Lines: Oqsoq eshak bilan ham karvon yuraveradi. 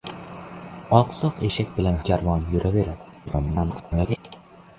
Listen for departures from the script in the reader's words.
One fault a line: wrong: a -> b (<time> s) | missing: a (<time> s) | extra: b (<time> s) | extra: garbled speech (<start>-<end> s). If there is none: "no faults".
missing: ham (2.0 s)
extra: garbled speech (3.3-4.2 s)